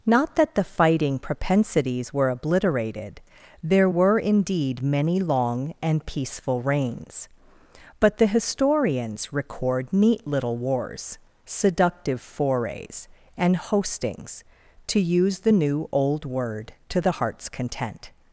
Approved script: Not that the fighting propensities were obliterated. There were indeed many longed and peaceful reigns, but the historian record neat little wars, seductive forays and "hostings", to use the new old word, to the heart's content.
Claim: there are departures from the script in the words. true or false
true